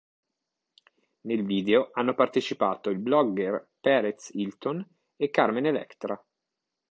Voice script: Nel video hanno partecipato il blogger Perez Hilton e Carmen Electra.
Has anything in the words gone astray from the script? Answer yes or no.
no